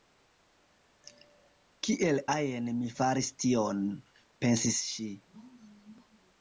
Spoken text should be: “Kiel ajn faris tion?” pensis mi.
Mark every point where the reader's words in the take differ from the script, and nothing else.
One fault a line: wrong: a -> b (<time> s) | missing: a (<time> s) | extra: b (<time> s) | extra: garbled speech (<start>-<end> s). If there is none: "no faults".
extra: mi (2.8 s)
wrong: mi -> ŝi (4.9 s)